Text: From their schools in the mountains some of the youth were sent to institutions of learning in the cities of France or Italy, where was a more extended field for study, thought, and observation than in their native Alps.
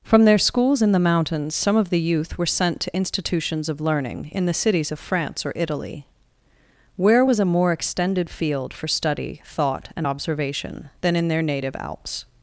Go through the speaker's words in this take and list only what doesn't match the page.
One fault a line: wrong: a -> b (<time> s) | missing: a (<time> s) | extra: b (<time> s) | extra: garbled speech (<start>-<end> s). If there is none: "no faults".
no faults